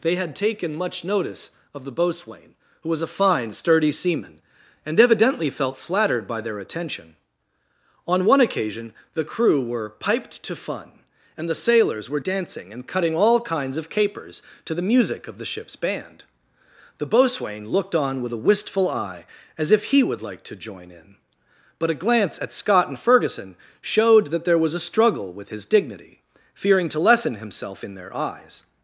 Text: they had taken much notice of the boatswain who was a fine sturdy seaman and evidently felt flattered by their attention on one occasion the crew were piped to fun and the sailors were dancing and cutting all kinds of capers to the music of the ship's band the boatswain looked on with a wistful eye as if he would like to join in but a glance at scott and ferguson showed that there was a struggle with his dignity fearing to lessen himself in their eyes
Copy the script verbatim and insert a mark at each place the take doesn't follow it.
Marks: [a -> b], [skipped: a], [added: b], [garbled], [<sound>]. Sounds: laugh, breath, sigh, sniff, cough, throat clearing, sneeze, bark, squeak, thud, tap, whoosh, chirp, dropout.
they had taken much notice of the boatswain who was a fine sturdy seaman and evidently felt flattered by their attention on one occasion the crew were piped to fun and the sailors were dancing and cutting all kinds of capers to the music of the ship's band the boatswain looked on with a wistful eye as if he would like to join in but a glance at scott and ferguson showed that there was a struggle with his dignity fearing to lessen himself in their eyes